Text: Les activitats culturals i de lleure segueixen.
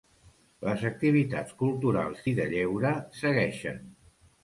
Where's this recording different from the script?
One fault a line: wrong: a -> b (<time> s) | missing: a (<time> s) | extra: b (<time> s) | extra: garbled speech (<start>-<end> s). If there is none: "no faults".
no faults